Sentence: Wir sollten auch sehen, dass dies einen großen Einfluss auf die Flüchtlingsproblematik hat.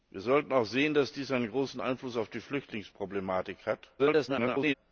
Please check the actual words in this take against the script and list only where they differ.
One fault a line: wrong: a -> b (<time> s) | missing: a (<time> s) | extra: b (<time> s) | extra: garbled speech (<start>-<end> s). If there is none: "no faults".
extra: garbled speech (4.0-4.7 s)